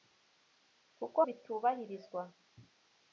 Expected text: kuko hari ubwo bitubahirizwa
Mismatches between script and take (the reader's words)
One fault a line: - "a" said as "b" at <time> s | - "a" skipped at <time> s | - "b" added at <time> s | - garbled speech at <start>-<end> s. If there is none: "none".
- "hari ubwo" skipped at 1.2 s